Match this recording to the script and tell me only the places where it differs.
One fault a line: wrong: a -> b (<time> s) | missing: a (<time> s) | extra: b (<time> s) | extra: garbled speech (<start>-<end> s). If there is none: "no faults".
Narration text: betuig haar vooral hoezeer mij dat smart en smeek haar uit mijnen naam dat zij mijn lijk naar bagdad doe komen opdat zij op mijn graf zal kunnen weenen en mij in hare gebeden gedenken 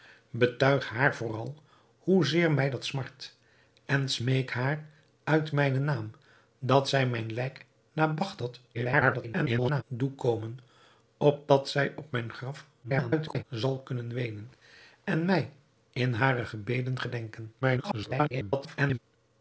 extra: garbled speech (8.7-9.8 s)
extra: garbled speech (12.8-13.4 s)
extra: garbled speech (17.6-19.0 s)